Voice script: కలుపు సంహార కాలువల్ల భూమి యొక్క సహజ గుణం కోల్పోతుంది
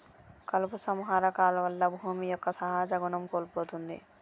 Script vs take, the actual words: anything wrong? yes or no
no